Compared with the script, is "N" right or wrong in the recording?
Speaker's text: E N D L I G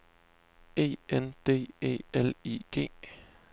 right